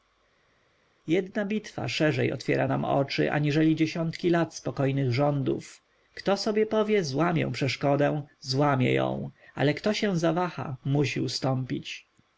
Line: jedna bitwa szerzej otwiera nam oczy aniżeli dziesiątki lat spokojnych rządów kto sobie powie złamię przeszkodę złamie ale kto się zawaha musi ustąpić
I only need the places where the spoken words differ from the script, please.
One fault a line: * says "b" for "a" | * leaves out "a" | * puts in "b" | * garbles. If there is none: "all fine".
* puts in "ją"